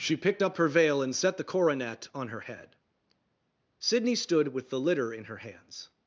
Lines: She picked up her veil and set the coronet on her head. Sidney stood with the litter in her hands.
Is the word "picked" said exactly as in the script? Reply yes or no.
yes